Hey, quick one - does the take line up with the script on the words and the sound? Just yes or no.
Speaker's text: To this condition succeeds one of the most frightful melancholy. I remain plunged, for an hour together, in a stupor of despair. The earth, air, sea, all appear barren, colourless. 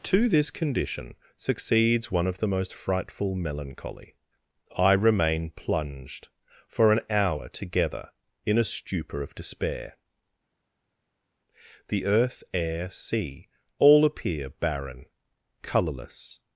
yes